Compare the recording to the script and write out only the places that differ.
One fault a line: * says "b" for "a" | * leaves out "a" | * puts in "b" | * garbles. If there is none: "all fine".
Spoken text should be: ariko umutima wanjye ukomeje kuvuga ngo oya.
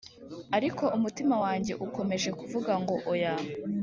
all fine